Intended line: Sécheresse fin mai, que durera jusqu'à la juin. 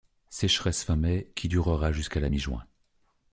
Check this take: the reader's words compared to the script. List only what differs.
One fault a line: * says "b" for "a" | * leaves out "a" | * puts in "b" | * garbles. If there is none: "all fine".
* says "qui" for "que"
* puts in "mi"